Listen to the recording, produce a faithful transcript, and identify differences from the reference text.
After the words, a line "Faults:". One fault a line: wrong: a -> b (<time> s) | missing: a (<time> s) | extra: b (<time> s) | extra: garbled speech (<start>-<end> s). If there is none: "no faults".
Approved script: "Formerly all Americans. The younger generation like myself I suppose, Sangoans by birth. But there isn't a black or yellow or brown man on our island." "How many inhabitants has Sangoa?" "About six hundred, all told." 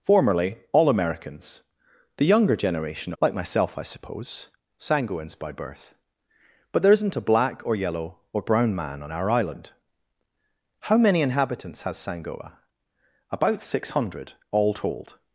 "Formerly all Americans. The younger generation like myself I suppose, Sangoans by birth. But there isn't a black or yellow or brown man on our island." "How many inhabitants has Sangoa?" "About six hundred, all told."
Faults:
no faults